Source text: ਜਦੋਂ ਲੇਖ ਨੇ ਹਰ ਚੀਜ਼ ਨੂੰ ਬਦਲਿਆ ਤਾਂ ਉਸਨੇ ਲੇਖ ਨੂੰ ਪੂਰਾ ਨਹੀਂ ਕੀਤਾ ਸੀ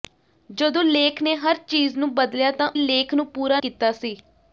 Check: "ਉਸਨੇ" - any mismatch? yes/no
yes